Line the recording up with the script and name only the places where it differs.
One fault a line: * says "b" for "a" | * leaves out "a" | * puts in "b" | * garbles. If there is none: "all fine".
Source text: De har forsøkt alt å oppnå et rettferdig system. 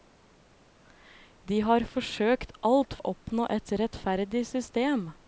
all fine